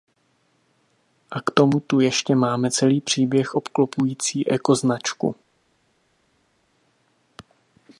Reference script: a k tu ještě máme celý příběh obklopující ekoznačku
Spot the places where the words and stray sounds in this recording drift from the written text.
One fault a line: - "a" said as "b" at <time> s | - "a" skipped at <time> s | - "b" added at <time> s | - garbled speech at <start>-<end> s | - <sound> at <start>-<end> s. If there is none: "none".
- "tomu" added at 1.5 s